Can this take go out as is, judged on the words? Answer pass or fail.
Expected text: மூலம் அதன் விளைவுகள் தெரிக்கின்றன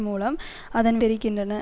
fail